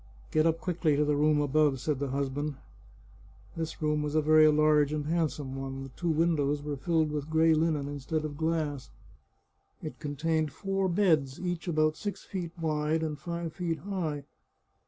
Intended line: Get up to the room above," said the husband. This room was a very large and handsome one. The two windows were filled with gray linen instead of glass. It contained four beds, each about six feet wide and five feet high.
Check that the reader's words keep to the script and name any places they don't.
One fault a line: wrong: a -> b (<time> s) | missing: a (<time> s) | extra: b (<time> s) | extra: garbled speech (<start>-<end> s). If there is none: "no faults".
extra: quickly (0.6 s)